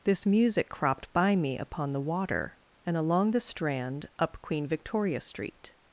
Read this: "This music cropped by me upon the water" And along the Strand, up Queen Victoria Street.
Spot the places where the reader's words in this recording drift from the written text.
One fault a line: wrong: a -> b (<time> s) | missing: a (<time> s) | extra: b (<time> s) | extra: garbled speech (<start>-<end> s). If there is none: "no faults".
no faults